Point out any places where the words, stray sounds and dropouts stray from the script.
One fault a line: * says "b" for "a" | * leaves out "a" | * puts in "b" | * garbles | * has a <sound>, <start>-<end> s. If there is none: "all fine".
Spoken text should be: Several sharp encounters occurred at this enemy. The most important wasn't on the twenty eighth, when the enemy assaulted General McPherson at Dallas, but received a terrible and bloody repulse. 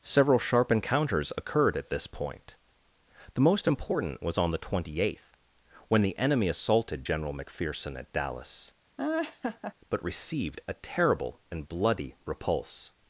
* says "point" for "enemy"
* says "was" for "wasn't"
* has a laugh, 9.0-9.7 s